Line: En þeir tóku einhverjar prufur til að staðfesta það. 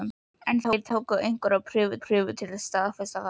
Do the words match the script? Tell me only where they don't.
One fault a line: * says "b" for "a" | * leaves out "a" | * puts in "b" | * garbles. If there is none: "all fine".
* puts in "prufur"